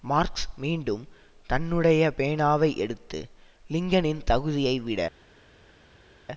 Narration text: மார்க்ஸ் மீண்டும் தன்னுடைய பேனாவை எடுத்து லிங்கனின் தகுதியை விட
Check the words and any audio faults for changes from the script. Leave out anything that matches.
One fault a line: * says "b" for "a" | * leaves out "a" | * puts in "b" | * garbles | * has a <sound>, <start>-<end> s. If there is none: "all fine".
all fine